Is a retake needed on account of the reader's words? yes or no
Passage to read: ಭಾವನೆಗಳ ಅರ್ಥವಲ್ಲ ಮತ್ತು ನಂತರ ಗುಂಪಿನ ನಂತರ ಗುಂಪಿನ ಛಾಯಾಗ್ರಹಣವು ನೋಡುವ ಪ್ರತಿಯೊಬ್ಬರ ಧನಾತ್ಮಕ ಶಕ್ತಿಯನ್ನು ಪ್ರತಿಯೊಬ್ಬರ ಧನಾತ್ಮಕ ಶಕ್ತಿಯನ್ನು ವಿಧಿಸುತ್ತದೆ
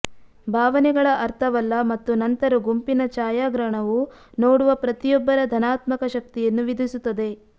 yes